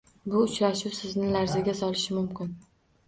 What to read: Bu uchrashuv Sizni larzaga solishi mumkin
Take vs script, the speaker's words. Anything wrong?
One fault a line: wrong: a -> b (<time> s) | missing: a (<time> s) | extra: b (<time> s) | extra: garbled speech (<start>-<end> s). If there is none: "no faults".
no faults